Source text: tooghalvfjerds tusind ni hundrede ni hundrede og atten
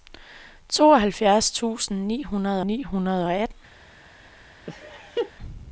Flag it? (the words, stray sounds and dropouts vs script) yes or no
yes